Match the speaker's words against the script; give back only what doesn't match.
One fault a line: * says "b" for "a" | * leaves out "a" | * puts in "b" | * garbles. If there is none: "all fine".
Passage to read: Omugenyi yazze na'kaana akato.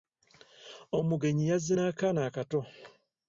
all fine